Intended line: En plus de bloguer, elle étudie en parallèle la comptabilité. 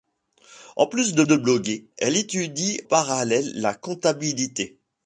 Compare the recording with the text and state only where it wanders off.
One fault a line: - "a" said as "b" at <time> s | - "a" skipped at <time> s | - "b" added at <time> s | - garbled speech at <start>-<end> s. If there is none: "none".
- "de" added at 1.2 s
- "en" skipped at 2.8 s